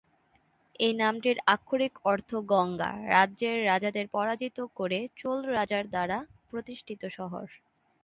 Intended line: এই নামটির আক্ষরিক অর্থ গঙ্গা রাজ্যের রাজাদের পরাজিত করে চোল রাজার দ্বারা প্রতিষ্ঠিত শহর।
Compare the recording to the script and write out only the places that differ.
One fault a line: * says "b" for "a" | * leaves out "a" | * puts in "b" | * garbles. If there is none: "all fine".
all fine